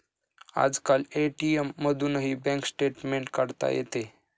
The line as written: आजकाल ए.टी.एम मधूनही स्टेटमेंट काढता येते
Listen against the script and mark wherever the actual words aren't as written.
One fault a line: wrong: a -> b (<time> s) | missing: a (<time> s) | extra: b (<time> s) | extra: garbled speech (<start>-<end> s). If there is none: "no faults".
extra: बँक (2.4 s)